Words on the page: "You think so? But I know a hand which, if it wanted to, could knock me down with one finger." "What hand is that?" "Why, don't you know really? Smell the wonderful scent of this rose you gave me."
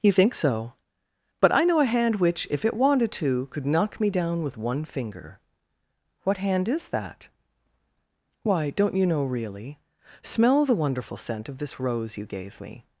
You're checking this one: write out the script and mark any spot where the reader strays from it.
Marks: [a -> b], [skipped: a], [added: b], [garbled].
"You think so? But I know a hand which, if it wanted to, could knock me down with one finger." "What hand is that?" "Why, don't you know really? Smell the wonderful scent of this rose you gave me."